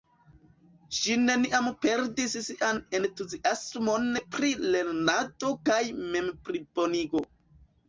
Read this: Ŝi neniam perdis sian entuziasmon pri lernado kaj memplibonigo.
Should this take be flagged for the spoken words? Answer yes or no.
no